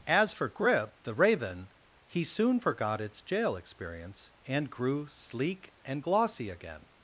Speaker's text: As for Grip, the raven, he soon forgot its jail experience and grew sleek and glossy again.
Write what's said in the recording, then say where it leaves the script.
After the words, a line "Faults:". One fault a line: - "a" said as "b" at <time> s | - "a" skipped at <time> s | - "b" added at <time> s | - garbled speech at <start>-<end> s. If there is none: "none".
As for Grip, the raven, he soon forgot its jail experience and grew sleek and glossy again.
Faults:
none